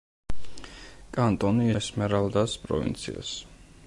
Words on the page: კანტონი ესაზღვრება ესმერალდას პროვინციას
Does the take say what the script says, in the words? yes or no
no